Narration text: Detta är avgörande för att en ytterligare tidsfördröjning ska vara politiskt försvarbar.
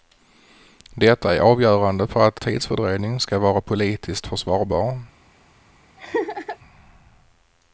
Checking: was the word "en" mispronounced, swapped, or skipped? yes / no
yes